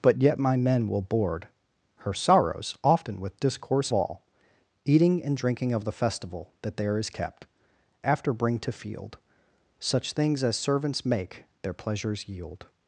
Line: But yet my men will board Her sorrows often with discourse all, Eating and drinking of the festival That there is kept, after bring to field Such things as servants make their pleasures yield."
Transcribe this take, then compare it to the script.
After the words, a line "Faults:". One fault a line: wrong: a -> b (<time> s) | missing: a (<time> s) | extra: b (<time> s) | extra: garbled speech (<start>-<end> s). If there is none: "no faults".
But yet my men will board Her sorrows often with discourse all, Eating and drinking of the festival That there is kept, after bring to field Such things as servants make their pleasures yield."
Faults:
no faults